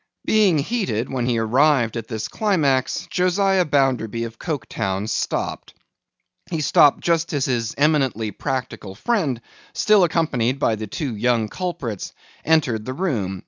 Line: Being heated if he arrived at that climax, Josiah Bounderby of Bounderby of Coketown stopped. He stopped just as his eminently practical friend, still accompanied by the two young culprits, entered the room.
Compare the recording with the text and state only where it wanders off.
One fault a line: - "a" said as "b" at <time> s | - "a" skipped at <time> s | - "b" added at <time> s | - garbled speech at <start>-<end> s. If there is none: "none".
- "if" said as "when" at 1.1 s
- "that" said as "this" at 2.1 s
- "Bounderby of" skipped at 4.4 s